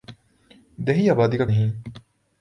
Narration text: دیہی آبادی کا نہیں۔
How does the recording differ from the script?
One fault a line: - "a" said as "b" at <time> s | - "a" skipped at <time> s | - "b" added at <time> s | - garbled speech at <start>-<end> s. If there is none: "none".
none